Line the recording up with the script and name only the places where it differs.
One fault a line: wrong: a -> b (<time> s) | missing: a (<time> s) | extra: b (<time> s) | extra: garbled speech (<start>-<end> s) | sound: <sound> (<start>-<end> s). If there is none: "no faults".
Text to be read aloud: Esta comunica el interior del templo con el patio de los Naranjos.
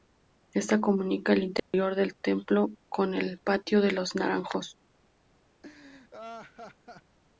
sound: dropout (1.6-1.7 s)
sound: laugh (5.6-7.2 s)